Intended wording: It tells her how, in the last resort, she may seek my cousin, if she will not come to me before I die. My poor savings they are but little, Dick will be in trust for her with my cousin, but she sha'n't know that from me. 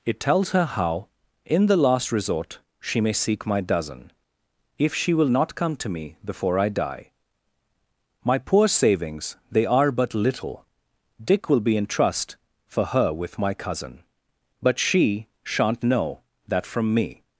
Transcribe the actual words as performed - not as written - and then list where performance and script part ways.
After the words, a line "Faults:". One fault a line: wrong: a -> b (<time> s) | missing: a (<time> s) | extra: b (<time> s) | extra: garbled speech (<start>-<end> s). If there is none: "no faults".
It tells her how, in the last resort, she may seek my dozen, if she will not come to me before I die. My poor savings they are but little, Dick will be in trust for her with my cousin, but she sha'n't know that from me.
Faults:
wrong: cousin -> dozen (3.6 s)